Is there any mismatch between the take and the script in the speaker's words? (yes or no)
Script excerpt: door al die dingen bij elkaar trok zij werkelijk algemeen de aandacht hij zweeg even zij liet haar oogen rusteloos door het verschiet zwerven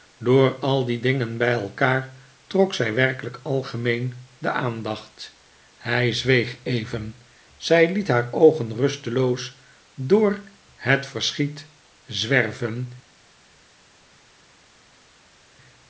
no